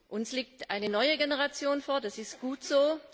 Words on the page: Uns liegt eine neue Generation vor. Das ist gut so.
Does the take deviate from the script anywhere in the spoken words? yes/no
no